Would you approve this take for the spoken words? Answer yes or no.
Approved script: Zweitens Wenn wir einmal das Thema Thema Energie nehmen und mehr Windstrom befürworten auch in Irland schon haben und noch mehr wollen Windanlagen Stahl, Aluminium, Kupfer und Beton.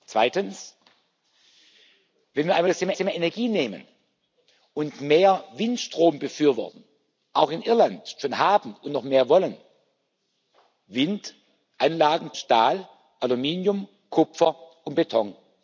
yes